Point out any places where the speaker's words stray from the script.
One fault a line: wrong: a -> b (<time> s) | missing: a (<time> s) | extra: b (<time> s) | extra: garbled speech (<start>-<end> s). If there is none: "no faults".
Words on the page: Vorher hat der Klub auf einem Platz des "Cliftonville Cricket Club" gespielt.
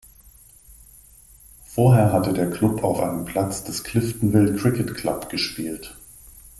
wrong: hat -> hatte (2.1 s)